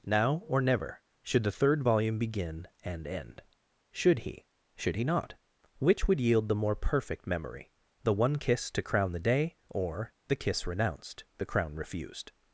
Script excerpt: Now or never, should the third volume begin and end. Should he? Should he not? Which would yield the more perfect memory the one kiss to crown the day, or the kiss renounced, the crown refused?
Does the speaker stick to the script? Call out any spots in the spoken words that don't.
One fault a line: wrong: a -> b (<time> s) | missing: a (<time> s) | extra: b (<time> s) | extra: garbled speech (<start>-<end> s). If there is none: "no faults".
no faults